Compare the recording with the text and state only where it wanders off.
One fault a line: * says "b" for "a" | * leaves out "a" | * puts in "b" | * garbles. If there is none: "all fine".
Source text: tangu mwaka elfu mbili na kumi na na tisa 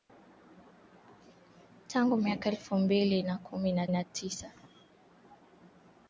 all fine